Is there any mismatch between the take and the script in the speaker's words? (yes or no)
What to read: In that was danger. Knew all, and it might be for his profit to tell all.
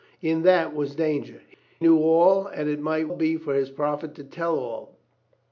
no